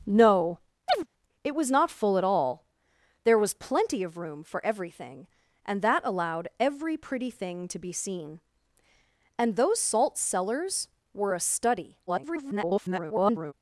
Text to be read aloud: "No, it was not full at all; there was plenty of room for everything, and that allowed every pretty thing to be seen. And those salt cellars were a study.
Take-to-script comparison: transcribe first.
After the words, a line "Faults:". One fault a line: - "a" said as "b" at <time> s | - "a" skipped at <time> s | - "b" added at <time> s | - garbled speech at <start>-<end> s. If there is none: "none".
"No, it was not full at all; there was plenty of room for everything, and that allowed every pretty thing to be seen. And those salt cellars were a study. [garbled]
Faults:
- garbled speech at 12.1-13.5 s